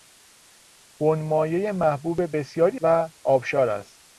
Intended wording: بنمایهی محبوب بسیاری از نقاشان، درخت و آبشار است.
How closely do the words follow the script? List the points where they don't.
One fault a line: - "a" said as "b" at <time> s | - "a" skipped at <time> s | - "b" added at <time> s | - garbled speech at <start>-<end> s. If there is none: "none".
- "از نقاشان درخت" skipped at 2.8 s